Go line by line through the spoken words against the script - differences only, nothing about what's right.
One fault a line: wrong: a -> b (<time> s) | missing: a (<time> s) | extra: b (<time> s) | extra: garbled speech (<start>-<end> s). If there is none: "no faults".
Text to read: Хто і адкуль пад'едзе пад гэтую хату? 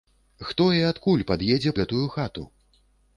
missing: пад (1.8 s)